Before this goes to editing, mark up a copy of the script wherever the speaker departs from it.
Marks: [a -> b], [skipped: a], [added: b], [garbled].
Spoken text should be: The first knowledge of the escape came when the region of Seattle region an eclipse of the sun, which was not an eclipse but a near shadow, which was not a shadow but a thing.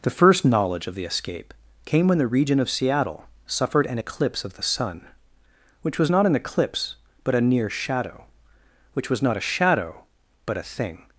The first knowledge of the escape came when the region of Seattle [region -> suffered] an eclipse of the sun, which was not an eclipse but a near shadow, which was not a shadow but a thing.